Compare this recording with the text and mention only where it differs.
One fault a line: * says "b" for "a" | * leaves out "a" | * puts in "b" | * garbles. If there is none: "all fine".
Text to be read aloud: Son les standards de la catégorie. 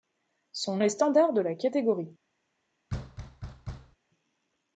all fine